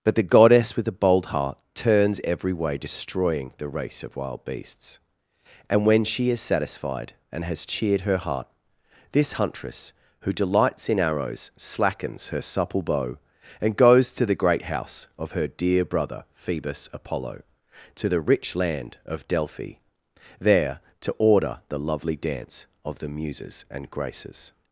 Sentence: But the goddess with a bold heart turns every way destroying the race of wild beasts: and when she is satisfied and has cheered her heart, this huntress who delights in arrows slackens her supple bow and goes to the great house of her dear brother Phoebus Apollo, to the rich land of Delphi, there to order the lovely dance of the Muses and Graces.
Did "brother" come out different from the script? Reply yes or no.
no